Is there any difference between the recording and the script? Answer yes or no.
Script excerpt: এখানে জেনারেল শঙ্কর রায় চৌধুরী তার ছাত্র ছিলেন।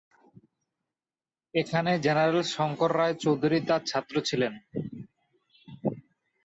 no